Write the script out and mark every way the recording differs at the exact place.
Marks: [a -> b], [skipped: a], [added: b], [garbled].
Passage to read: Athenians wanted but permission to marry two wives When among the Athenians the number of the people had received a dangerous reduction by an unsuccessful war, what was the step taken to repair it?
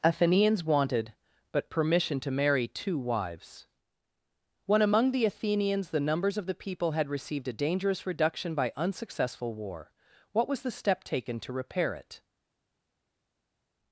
Athenians wanted but permission to marry two wives When among the Athenians the [number -> numbers] of the people had received a dangerous reduction by [skipped: an] unsuccessful war, what was the step taken to repair it?